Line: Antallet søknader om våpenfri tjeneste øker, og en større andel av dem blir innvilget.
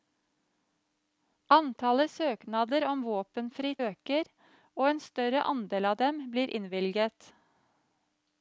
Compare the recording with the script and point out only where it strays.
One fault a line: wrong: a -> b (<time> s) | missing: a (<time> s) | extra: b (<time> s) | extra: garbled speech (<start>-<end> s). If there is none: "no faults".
missing: tjeneste (3.7 s)